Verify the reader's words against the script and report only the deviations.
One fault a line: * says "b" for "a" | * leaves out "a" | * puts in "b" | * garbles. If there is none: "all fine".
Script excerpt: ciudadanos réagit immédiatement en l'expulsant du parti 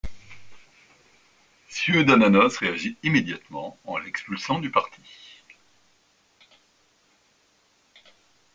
all fine